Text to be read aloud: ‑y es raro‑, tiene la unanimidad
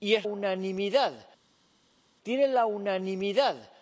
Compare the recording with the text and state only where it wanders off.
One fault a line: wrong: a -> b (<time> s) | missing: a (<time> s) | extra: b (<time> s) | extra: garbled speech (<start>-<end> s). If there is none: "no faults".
wrong: raro -> unanimidad (0.2 s)